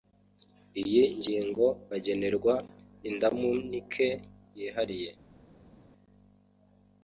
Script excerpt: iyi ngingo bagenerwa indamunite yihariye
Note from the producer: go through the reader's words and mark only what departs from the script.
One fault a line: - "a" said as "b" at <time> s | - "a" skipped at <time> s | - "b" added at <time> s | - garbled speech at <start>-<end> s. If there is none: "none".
none